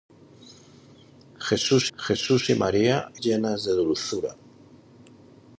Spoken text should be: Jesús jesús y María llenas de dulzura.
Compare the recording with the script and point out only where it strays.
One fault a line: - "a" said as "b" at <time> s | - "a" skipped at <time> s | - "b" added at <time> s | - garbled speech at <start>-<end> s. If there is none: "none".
none